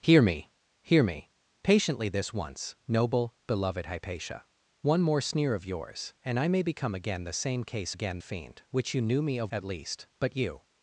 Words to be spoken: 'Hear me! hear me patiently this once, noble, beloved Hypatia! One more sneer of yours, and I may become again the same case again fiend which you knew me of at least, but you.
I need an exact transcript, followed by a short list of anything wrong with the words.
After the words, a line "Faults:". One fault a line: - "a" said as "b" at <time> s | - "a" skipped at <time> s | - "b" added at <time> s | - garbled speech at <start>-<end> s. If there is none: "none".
'Hear me! hear me patiently this once, noble, beloved Hypatia! One more sneer of yours, and I may become again the same case again fiend which you knew me of at least, but you.
Faults:
none